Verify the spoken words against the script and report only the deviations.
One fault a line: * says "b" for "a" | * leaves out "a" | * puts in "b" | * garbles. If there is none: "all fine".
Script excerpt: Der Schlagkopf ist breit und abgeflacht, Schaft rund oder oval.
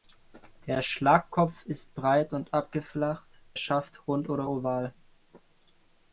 all fine